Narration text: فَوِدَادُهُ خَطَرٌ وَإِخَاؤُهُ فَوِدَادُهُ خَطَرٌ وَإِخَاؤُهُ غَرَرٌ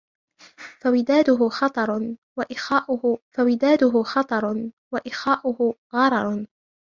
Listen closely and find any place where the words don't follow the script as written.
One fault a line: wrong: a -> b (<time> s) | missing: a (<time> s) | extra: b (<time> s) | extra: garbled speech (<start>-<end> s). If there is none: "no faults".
no faults